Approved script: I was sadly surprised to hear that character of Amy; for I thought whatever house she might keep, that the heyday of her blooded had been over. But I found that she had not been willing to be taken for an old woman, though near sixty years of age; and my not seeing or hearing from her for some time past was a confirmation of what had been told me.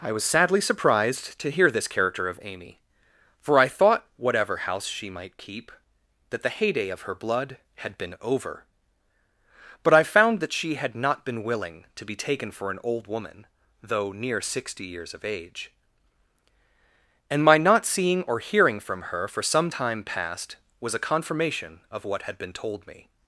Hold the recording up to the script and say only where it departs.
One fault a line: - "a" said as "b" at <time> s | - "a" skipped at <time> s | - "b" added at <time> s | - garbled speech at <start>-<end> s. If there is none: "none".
- "that" said as "this" at 1.7 s
- "blooded" said as "blood" at 7.1 s